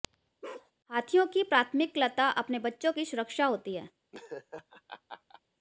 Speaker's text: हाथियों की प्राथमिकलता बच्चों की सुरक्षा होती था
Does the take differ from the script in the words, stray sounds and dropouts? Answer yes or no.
yes